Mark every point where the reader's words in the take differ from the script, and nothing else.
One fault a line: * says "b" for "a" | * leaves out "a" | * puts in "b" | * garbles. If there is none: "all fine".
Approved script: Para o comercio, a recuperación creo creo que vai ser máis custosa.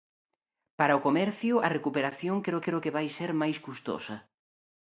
all fine